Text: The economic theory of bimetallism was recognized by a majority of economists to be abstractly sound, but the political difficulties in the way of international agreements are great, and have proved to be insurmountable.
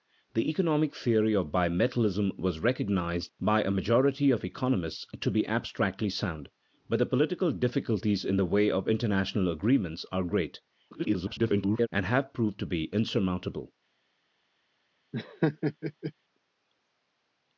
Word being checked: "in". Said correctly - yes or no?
yes